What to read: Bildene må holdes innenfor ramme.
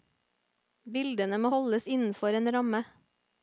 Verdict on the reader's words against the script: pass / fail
fail